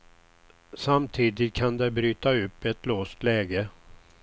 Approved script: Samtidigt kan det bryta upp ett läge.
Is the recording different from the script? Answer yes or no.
yes